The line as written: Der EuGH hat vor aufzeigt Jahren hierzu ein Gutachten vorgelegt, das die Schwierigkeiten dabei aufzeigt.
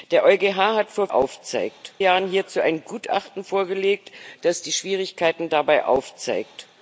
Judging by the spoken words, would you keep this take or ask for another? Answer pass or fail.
pass